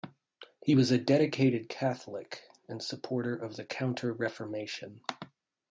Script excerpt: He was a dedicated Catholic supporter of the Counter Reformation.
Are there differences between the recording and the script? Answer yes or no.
yes